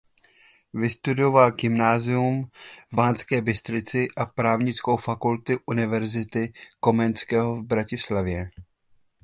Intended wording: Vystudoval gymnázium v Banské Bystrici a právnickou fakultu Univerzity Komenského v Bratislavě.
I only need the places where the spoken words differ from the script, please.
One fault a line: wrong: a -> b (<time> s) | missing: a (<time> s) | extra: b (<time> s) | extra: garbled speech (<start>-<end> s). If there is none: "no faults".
no faults